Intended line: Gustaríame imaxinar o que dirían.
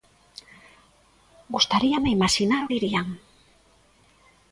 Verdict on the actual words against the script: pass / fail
fail